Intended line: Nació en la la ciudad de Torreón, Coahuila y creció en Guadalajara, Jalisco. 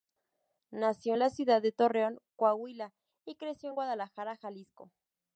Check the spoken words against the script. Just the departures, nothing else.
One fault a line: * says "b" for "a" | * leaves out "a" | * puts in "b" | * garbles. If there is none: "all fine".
* leaves out "la"